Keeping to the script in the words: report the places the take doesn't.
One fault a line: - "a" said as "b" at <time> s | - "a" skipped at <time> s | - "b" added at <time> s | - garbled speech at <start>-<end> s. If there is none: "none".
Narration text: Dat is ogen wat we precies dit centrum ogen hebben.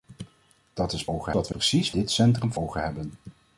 none